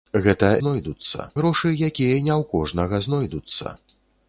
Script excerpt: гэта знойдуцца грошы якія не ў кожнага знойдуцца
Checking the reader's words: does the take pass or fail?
pass